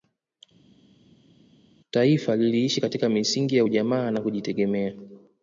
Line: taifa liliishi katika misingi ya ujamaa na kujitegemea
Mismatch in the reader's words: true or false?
false